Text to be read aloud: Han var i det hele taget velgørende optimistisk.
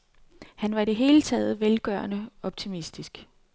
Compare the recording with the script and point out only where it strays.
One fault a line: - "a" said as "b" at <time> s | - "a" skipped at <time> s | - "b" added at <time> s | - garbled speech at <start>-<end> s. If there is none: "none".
none